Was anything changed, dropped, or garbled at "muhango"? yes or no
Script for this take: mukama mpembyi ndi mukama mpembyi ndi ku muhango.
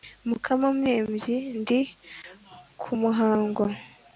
no